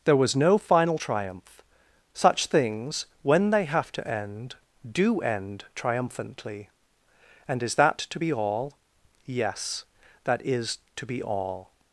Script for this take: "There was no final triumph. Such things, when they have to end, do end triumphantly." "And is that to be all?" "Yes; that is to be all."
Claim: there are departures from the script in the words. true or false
false